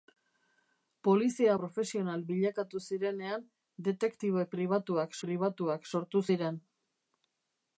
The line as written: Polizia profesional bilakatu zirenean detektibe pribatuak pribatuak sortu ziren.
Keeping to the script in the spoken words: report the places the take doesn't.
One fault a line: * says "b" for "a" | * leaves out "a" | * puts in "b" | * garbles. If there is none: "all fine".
all fine